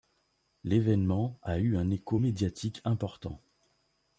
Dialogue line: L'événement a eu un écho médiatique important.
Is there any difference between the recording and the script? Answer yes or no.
no